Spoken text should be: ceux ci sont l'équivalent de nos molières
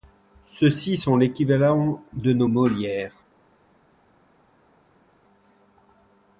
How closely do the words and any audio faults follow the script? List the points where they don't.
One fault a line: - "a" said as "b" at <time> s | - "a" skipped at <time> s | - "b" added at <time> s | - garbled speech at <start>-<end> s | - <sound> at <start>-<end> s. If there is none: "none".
none